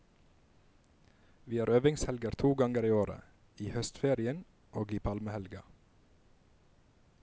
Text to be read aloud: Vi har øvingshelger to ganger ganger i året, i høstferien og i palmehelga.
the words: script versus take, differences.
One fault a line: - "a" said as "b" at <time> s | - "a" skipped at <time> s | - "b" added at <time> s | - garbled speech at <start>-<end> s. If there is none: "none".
- "ganger" skipped at 2.8 s